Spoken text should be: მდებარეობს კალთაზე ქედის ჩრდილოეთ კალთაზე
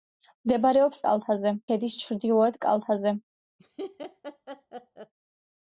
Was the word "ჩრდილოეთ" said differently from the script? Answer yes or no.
no